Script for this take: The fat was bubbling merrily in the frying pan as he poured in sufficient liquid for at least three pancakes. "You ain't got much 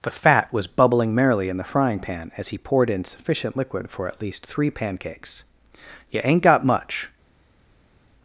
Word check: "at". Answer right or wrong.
right